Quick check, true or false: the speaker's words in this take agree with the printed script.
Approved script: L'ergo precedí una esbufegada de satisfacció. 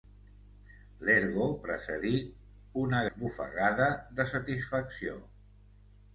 true